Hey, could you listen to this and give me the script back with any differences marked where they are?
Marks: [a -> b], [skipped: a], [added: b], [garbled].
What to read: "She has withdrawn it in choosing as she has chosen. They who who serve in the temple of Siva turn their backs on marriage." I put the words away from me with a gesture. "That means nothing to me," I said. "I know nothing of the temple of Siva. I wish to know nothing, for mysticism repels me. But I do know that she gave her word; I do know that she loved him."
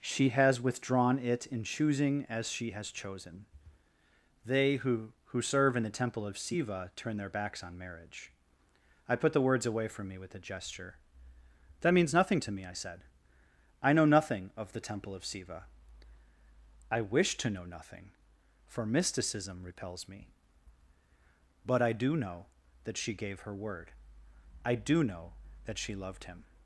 "She has withdrawn it in choosing as she has chosen. They who who serve in the temple of Siva turn their backs on marriage." I put the words away from me with a gesture. "That means nothing to me," I said. "I know nothing of the temple of Siva. I wish to know nothing, for mysticism repels me. But I do know that she gave her word; I do know that she loved him."